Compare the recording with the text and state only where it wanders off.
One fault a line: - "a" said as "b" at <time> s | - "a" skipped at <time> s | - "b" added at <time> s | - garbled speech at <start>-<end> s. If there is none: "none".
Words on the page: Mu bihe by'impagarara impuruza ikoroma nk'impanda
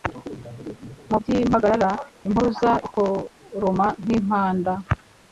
- "bihe" skipped at 1.2 s